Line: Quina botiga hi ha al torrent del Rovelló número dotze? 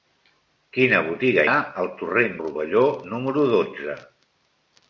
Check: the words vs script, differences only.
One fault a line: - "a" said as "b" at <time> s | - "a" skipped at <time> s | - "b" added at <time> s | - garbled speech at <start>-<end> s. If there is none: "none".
- "hi" skipped at 1.4 s
- "del" skipped at 2.3 s